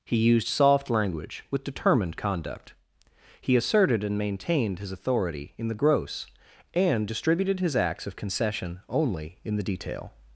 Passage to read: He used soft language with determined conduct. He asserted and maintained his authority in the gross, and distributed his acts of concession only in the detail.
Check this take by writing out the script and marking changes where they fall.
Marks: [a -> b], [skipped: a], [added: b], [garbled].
He used soft language with determined conduct. He asserted and maintained his authority in the gross, and distributed his acts of concession only in the detail.